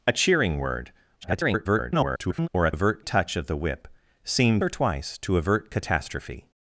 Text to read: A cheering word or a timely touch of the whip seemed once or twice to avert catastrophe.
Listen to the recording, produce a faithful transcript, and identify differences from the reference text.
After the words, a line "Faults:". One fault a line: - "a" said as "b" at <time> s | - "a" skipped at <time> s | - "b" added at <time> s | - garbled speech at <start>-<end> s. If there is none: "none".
A cheering word [garbled] or a avert touch of the whip seemed or twice to avert catastrophe.
Faults:
- garbled speech at 1.2-2.5 s
- "timely" said as "avert" at 2.7 s
- "once" skipped at 4.6 s